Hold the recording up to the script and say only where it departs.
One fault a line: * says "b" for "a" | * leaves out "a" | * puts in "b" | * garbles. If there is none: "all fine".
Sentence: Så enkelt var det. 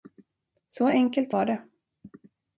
all fine